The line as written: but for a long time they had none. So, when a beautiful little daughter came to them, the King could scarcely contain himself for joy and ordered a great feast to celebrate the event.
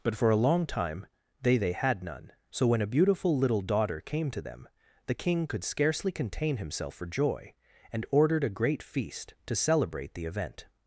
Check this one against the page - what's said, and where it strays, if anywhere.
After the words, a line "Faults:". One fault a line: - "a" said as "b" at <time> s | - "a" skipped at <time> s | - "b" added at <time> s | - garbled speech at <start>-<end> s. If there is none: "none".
but for a long time they they had none. So, when a beautiful little daughter came to them, the King could scarcely contain himself for joy and ordered a great feast to celebrate the event.
Faults:
- "they" added at 1.6 s